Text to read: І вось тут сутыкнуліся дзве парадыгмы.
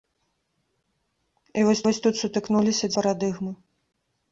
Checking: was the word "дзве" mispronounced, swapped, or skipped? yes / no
yes